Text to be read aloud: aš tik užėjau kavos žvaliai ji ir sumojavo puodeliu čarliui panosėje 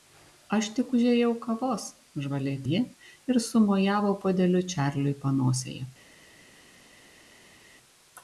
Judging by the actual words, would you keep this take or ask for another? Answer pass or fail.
pass